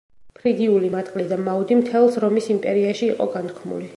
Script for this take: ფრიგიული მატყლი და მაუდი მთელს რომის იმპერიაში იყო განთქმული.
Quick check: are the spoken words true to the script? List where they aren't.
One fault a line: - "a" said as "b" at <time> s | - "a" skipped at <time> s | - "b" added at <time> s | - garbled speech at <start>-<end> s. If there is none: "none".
none